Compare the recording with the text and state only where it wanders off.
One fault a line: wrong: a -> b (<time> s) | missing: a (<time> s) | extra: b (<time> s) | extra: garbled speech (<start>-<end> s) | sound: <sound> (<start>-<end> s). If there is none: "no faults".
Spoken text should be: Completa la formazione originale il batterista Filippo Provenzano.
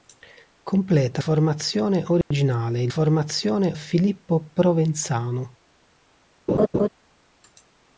missing: la (1.2 s)
sound: dropout (2.2-2.3 s)
wrong: batterista -> formazione (2.9 s)
sound: laugh (6.5-6.9 s)